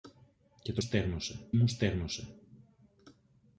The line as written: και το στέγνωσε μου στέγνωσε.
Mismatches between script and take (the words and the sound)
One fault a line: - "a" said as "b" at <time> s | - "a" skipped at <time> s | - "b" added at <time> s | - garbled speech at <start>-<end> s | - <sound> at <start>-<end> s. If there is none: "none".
none